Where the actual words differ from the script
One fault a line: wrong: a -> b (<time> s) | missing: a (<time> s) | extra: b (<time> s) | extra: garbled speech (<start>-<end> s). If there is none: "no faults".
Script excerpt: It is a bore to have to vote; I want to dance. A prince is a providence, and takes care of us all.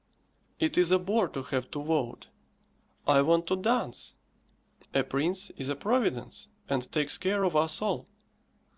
no faults